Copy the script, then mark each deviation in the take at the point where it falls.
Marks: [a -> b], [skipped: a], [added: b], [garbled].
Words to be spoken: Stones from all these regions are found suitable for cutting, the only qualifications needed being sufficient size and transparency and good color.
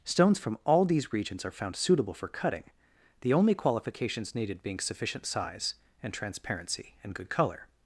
Stones from all these regions are found suitable for cutting, the only qualifications needed being sufficient size and transparency and good color.